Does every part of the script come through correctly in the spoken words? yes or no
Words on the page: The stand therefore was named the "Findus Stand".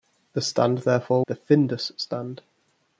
no